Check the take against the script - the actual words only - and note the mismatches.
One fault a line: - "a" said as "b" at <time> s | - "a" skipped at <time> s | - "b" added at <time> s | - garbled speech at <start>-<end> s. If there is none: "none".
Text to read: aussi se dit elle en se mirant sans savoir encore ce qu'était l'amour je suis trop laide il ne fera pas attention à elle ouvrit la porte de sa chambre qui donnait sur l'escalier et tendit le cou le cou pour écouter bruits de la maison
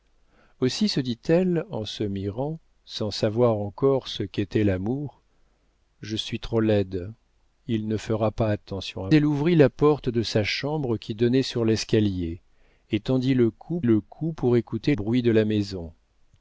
none